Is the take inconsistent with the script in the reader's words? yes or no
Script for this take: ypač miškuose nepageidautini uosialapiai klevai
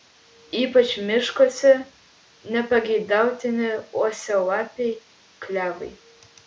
no